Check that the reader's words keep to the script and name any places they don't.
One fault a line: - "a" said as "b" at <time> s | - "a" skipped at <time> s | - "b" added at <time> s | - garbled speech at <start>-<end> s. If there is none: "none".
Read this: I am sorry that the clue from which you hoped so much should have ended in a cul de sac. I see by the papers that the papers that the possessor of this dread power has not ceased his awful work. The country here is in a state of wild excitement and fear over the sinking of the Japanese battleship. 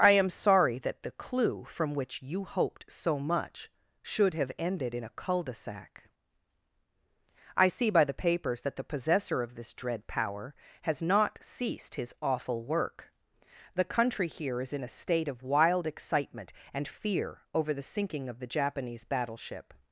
- "papers that the" skipped at 8.9 s